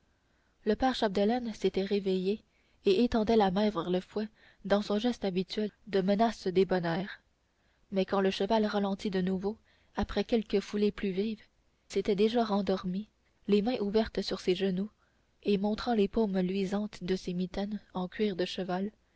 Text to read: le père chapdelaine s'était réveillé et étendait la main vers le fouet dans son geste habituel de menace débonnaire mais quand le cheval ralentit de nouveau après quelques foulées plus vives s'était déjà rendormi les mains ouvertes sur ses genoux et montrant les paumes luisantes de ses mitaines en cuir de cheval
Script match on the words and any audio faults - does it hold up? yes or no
yes